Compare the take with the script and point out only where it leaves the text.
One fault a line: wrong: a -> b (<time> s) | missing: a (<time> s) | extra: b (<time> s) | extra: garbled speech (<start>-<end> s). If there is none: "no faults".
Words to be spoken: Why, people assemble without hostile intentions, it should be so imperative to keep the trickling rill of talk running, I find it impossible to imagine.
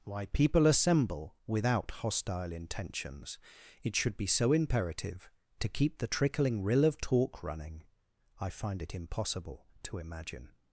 no faults